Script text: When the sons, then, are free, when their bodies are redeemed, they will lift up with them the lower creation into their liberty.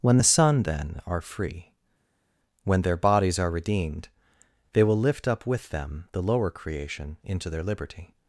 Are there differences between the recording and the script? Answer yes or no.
yes